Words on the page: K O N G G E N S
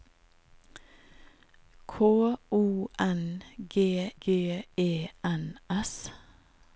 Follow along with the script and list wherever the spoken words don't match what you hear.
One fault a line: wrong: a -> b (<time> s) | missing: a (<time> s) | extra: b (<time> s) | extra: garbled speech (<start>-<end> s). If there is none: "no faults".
no faults